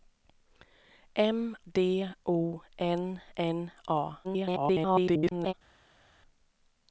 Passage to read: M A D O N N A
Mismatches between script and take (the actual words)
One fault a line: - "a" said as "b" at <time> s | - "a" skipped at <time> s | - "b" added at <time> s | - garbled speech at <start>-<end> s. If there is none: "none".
- "A" skipped at 1.6 s
- garbled speech at 4.2-5.5 s